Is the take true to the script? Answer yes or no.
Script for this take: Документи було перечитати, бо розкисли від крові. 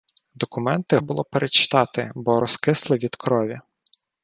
yes